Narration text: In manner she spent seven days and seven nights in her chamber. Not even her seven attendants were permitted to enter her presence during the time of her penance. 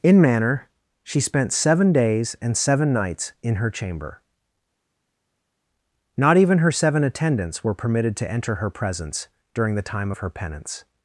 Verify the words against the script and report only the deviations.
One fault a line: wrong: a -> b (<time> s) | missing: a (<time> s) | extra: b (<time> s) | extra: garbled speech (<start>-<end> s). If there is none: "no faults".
no faults